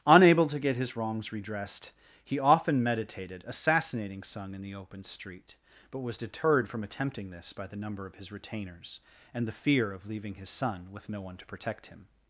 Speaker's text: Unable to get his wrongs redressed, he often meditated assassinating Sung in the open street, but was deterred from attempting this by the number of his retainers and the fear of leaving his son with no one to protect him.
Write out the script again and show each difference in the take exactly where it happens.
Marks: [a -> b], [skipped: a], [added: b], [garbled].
Unable to get his wrongs redressed, he often meditated assassinating Sung in the open street, but was deterred from attempting this by the number of his retainers and the fear of leaving his son with no one to protect him.